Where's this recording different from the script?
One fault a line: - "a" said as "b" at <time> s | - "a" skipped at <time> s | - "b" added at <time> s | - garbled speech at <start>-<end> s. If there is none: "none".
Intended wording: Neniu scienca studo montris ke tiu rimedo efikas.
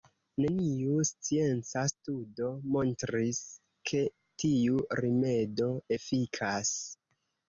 none